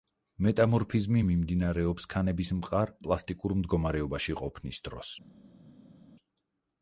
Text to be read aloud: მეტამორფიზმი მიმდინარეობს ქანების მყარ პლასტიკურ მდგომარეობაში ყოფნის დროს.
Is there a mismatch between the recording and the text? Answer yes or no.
no